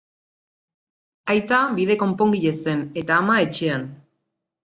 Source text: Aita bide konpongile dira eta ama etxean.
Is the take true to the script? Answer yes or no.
no